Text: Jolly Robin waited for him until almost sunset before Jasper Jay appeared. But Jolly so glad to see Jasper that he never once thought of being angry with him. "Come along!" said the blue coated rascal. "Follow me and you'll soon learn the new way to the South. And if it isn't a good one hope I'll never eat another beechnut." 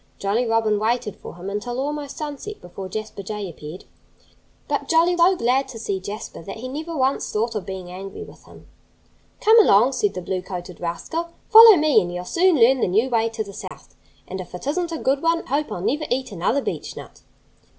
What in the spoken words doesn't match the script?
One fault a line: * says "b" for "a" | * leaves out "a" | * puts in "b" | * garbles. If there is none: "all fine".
all fine